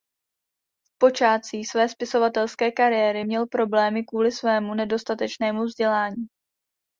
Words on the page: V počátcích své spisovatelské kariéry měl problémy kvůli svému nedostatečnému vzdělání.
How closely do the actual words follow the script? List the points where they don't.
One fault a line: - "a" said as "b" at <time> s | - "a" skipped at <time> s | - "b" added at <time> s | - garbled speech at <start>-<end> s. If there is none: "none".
none